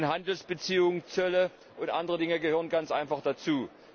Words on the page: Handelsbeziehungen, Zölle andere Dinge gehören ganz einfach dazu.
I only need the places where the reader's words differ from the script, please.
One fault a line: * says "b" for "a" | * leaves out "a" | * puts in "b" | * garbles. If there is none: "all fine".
* puts in "und"